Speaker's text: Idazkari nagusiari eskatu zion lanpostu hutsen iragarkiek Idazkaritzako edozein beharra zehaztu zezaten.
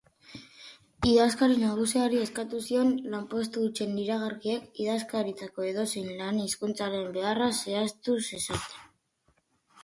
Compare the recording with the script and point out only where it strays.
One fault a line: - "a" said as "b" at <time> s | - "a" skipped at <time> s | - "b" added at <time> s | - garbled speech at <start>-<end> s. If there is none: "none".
- "lan hizkuntzaren" added at 6.2 s